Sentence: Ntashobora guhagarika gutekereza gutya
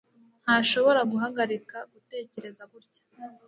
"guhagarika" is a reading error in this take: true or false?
false